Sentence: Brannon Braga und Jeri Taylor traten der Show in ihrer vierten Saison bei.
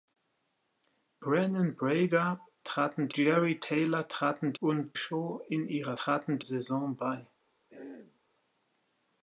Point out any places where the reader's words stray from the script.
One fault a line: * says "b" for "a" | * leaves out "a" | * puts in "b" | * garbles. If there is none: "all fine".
* says "traten" for "und"
* says "und" for "der"
* says "traten" for "vierten"